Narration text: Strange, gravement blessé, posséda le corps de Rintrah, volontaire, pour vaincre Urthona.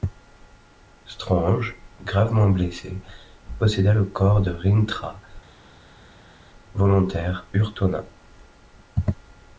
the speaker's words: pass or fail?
fail